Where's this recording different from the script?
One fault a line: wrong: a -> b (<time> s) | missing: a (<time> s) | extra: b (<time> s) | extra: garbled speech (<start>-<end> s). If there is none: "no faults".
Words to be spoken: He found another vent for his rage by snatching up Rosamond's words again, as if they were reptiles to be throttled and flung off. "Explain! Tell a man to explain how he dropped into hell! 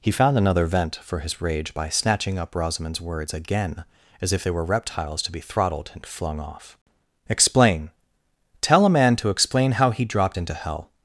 no faults